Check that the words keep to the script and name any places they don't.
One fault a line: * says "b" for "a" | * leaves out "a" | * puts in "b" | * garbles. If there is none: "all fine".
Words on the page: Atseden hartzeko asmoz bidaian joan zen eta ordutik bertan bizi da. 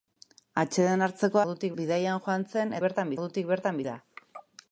* says "ordutik" for "asmoz"
* says "bertan" for "eta"
* leaves out "bizi"